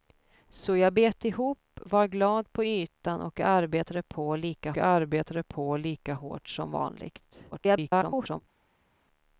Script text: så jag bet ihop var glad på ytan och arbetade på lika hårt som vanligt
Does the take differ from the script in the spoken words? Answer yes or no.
yes